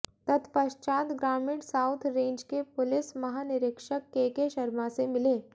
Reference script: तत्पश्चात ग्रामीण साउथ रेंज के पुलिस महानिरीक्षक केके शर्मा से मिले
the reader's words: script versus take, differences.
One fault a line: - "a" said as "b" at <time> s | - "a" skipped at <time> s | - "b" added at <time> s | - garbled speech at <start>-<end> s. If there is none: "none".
none